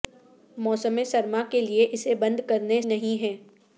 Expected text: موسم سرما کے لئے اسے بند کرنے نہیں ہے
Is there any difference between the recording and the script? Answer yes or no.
no